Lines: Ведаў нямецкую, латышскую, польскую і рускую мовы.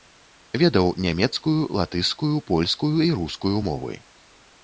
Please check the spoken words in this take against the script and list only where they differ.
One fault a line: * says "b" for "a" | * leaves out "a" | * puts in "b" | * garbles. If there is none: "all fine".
all fine